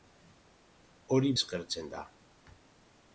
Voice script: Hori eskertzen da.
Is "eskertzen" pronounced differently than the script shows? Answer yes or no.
no